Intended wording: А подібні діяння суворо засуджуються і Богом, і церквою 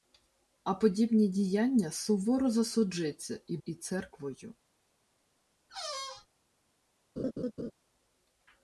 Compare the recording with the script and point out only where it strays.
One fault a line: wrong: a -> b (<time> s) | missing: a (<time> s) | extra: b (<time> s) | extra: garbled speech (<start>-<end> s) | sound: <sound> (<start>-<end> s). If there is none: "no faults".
missing: Богом (3.6 s)
sound: squeak (5.7-6.3 s)
sound: laugh (7.2-7.7 s)